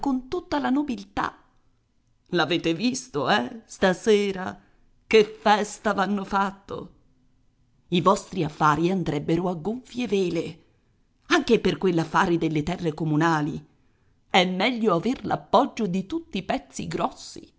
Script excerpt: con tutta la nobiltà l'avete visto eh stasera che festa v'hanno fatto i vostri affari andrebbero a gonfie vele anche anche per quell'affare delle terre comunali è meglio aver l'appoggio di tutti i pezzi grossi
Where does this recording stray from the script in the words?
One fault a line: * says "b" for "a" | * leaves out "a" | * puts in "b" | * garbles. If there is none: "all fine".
* leaves out "anche"